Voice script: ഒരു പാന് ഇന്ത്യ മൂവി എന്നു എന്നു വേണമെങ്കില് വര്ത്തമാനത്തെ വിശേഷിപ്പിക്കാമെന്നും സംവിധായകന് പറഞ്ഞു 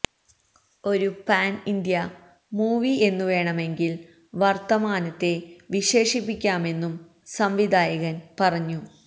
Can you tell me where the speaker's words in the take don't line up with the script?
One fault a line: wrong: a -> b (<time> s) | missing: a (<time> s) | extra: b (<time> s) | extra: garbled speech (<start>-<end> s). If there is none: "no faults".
missing: എന്നു (3.2 s)